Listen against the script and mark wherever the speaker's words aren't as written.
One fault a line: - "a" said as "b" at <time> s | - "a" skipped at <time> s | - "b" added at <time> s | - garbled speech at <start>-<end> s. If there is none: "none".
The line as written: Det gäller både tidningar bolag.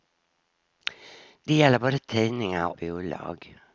none